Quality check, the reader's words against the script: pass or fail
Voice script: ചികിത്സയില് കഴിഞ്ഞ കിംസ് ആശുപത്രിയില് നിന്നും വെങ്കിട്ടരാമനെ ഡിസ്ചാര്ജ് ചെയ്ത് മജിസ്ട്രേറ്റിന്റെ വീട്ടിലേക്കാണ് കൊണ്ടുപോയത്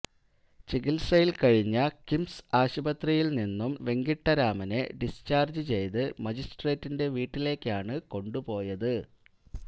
pass